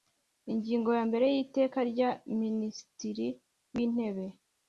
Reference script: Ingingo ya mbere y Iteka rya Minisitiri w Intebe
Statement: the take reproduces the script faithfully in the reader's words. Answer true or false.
true